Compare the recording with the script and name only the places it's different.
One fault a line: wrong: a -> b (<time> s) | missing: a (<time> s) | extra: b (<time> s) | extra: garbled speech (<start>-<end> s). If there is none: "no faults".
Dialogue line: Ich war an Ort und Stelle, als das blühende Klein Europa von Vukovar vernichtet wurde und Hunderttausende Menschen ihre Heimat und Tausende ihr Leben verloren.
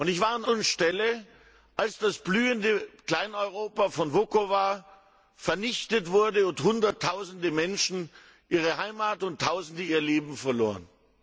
missing: Ort (0.5 s)